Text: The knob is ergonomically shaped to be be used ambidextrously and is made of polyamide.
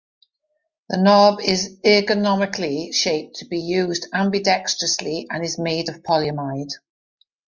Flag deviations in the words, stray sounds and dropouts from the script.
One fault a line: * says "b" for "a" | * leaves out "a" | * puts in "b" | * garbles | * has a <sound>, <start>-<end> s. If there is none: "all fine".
* leaves out "be"